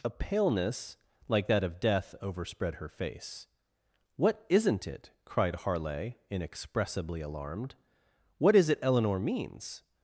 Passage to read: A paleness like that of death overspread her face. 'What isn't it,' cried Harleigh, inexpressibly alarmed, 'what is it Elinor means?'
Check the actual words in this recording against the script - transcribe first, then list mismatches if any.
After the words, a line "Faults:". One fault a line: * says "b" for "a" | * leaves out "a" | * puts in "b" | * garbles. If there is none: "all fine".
A paleness like that of death overspread her face. 'What isn't it,' cried Harleigh, inexpressibly alarmed, 'what is it Elinor means?'
Faults:
all fine